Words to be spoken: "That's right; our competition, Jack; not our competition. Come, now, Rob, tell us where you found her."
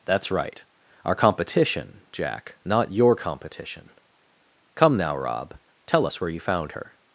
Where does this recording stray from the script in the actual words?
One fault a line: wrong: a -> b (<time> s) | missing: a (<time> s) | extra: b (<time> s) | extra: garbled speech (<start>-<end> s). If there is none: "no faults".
wrong: our -> your (2.9 s)